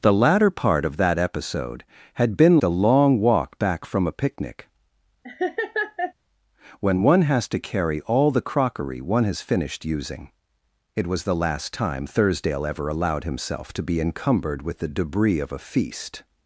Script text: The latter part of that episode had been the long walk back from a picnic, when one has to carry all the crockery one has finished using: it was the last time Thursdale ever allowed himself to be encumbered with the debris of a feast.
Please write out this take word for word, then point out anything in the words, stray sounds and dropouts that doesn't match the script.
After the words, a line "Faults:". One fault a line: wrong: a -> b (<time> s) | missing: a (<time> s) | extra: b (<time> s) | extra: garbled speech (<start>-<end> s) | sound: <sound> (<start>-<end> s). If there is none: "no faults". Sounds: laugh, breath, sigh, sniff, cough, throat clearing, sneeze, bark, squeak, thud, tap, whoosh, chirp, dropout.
The latter part of that episode had been the long walk back from a picnic, when one has to carry all the crockery one has finished using: it was the last time Thursdale ever allowed himself to be encumbered with the debris of a feast.
Faults:
sound: laugh (5.2-6.1 s)